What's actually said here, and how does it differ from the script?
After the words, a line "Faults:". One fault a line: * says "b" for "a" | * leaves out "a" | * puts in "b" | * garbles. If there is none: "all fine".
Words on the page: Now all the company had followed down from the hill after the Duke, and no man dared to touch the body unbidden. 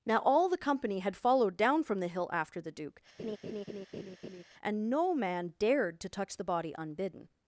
Now all the company had followed down from the hill after the Duke, and no man dared to touch the body unbidden.
Faults:
all fine